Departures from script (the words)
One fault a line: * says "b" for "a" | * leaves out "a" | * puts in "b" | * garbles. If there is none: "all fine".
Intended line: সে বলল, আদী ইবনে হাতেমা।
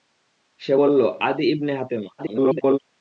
* garbles